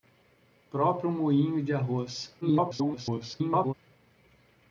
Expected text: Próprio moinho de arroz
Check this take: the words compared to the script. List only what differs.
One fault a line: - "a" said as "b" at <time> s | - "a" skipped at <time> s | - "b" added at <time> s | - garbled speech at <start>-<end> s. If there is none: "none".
- garbled speech at 2.4-3.7 s